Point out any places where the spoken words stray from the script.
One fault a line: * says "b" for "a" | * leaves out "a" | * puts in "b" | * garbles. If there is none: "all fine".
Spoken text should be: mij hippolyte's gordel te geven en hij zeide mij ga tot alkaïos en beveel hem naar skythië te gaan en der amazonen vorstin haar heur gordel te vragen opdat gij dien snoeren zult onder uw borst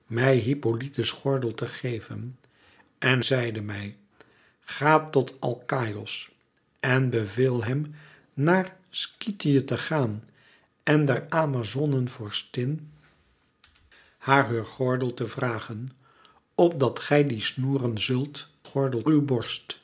* leaves out "hij"
* says "gordel" for "onder"